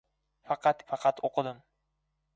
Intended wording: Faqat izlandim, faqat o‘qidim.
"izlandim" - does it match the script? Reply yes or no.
no